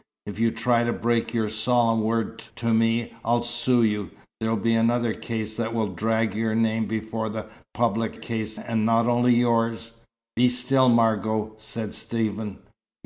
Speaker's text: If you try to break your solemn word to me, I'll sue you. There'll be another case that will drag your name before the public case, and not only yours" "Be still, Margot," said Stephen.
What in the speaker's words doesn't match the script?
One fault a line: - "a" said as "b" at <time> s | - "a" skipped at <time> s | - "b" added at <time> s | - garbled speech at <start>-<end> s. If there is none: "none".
none